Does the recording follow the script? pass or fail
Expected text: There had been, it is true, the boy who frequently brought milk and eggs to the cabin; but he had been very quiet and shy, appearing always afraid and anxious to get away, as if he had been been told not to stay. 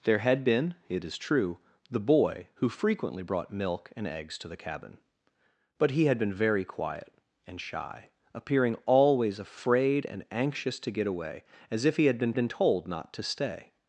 pass